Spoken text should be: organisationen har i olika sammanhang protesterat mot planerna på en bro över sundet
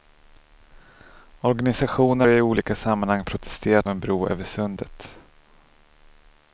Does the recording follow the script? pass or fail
fail